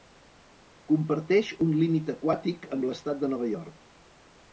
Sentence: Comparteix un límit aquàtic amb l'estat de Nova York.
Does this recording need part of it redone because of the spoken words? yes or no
no